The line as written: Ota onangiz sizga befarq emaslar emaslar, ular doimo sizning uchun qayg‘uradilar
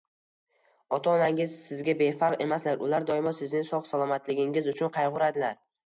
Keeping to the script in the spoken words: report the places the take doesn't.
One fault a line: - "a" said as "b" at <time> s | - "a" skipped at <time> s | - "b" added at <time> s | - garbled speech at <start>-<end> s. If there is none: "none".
- "emaslar" skipped at 2.8 s
- "sog‘-salomatligingiz" added at 3.7 s